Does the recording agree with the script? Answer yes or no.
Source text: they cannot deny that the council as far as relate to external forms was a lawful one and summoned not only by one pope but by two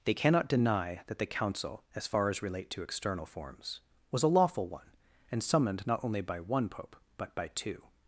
yes